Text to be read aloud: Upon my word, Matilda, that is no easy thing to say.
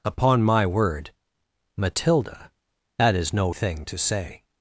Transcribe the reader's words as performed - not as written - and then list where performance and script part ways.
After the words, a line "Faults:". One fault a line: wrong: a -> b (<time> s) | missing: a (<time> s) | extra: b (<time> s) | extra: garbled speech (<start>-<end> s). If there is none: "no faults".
Upon my word, Matilda, that is no thing to say.
Faults:
missing: easy (3.5 s)